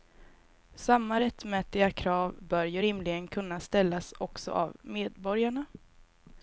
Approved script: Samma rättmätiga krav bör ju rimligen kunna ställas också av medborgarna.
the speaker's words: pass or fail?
pass